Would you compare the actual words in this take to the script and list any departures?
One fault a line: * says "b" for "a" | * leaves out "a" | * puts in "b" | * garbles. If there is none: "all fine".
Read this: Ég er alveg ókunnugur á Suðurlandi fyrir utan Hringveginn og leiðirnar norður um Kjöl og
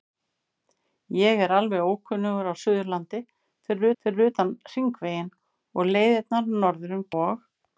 * puts in "fyrir"
* leaves out "Kjöl"